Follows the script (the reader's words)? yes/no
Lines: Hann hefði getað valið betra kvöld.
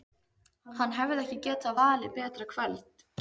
no